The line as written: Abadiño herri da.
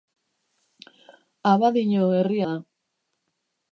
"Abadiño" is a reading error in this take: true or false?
false